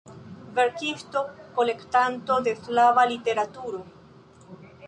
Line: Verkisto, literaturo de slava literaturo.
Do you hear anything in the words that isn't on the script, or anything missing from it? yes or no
yes